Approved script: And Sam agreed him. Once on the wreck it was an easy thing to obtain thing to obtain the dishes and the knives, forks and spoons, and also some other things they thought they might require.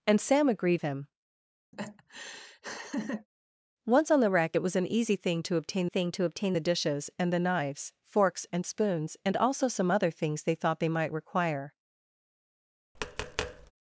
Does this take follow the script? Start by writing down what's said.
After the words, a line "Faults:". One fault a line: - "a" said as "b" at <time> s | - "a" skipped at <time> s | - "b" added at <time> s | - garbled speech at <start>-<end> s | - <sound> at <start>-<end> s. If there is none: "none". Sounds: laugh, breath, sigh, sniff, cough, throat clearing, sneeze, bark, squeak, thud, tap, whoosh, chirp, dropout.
And Sam agreed him. Once on the wreck it was an easy thing to obtain thing to obtain the dishes and the knives, forks and spoons, and also some other things they thought they might require.
Faults:
- laugh at 1.7-3.3 s
- tap at 12.9-13.7 s